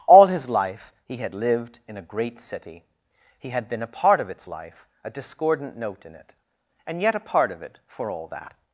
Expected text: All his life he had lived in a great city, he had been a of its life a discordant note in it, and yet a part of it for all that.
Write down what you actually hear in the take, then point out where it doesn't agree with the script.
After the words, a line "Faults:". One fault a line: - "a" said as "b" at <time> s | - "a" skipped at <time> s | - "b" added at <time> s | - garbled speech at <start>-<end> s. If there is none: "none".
All his life he had lived in a great city, he had been a part of its life a discordant note in it, and yet a part of it for all that.
Faults:
- "part" added at 3.9 s